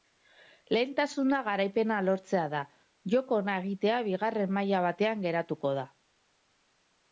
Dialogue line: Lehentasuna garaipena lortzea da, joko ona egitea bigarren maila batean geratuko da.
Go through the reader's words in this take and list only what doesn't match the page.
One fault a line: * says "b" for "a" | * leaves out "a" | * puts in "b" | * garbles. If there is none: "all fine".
all fine